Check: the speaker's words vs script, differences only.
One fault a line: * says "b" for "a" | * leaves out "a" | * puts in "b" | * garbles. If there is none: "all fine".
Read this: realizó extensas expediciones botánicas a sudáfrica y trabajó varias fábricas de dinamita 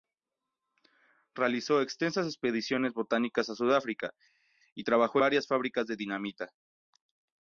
all fine